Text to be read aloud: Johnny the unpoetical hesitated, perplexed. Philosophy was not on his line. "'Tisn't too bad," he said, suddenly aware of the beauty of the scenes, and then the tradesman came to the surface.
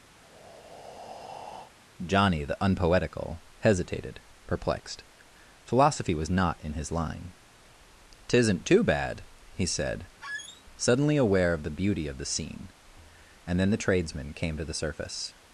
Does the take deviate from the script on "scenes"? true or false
true